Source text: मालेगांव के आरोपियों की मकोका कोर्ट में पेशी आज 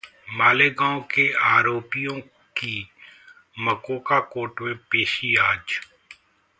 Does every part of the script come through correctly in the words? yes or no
yes